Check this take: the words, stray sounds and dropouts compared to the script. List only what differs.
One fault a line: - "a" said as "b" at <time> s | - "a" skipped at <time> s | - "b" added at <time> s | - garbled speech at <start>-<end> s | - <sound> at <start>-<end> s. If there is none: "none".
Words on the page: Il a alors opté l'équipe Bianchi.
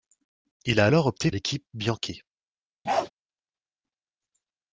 - bark at 2.9-3.1 s